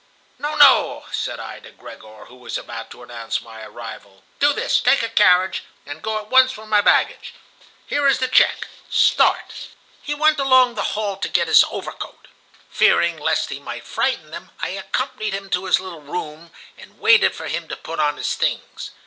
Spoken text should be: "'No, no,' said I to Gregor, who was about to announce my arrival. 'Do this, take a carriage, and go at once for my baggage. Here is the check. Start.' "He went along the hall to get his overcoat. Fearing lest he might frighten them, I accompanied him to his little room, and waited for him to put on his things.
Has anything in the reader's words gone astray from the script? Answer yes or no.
no